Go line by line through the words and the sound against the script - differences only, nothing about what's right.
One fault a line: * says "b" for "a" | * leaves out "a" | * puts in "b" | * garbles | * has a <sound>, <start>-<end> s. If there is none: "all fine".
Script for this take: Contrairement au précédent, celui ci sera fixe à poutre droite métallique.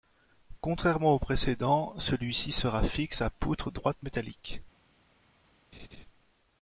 * has a laugh, 5.7-6.1 s